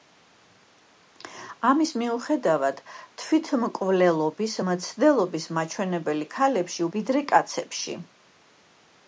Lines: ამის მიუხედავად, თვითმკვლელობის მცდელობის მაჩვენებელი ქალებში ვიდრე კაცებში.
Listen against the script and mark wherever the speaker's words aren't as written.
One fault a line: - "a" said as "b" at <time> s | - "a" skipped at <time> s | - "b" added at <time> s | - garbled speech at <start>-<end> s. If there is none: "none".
none